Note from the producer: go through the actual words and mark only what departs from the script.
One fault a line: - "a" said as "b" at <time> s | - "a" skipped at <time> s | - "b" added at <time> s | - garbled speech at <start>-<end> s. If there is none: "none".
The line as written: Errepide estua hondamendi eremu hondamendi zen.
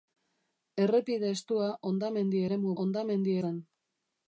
none